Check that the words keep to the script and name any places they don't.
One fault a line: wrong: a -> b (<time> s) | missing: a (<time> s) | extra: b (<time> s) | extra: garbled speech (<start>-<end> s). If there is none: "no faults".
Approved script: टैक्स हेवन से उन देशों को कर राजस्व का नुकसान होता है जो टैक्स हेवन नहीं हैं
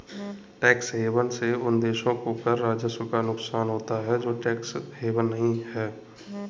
no faults